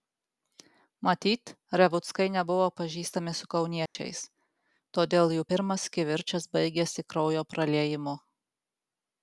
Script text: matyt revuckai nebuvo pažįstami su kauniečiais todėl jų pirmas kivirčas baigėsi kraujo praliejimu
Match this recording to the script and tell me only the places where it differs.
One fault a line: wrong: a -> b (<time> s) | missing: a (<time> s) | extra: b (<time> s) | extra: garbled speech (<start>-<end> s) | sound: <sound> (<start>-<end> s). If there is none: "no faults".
sound: dropout (3.9-4.0 s)